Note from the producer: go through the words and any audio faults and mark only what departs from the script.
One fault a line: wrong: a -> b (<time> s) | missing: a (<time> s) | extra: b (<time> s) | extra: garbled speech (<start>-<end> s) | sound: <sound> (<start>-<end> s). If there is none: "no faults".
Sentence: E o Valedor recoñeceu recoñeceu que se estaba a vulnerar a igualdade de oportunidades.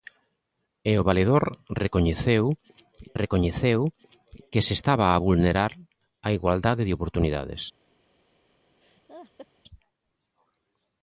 sound: laugh (8.8-9.5 s)